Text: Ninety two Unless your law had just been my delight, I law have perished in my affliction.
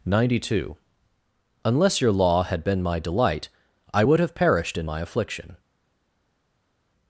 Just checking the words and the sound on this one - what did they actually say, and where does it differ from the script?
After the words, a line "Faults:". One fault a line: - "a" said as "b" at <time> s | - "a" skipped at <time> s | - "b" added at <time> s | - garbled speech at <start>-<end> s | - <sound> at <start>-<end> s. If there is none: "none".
Ninety two Unless your law had been my delight, I would have perished in my affliction.
Faults:
- "just" skipped at 2.6 s
- "law" said as "would" at 4.0 s